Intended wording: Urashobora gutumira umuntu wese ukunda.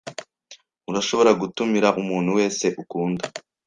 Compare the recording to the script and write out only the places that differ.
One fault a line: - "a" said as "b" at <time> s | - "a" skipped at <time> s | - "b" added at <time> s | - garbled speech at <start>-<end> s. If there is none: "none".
none